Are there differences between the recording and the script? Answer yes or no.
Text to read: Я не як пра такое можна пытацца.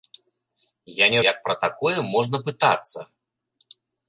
no